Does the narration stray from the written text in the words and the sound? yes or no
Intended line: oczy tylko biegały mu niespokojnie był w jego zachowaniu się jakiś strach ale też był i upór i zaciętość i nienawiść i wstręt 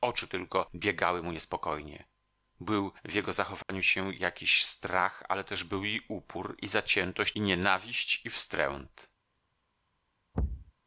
yes